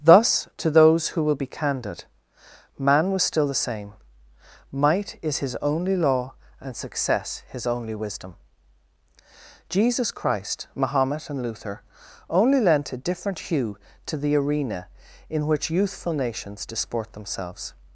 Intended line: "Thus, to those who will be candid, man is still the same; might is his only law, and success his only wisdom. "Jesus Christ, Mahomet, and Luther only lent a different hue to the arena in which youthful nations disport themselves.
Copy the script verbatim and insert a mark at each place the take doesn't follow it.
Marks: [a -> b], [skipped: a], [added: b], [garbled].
"Thus, to those who will be candid, man [is -> was] still the same; might is his only law, and success his only wisdom. "Jesus Christ, Mahomet, and Luther only lent a different hue to the arena in which youthful nations disport themselves.